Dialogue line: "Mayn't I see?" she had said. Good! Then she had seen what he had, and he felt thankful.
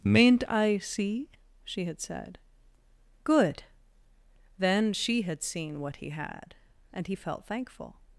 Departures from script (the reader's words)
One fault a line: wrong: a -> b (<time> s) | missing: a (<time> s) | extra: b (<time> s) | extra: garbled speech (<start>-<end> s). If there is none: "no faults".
no faults